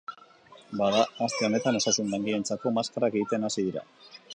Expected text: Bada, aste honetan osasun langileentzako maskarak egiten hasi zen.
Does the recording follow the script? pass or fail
fail